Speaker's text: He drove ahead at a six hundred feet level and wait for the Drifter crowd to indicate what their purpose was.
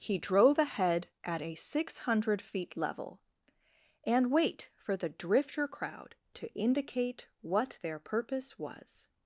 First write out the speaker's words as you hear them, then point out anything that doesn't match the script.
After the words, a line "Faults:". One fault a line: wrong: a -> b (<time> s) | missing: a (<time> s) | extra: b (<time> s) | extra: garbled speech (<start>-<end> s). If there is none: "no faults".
He drove ahead at a six hundred feet level and wait for the Drifter crowd to indicate what their purpose was.
Faults:
no faults